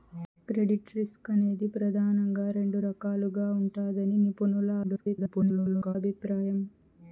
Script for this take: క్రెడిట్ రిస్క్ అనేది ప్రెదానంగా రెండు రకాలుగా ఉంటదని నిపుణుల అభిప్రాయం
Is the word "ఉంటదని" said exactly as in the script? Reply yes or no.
yes